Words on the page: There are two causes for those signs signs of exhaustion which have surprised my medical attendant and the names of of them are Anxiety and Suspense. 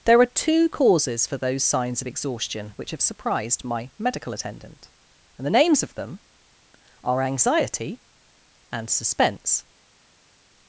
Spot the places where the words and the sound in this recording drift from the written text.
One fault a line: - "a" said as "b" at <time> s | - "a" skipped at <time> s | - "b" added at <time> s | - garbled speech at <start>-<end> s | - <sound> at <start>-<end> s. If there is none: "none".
- "signs" skipped at 2.0 s
- "of" skipped at 5.9 s